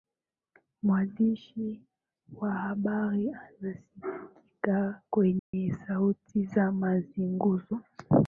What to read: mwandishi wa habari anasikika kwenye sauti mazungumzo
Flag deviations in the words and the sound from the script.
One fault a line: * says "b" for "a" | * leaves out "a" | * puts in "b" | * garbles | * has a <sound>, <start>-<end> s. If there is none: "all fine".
* has a dropout, 5.4-5.5 s
* puts in "za"